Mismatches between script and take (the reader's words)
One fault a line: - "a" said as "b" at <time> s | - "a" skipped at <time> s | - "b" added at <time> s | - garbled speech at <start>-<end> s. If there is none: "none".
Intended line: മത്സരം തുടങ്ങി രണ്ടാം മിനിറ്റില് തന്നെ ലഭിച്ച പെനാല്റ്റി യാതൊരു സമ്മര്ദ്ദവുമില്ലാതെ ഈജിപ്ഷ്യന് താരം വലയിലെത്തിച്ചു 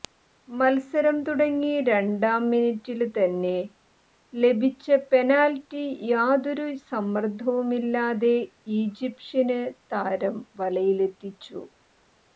none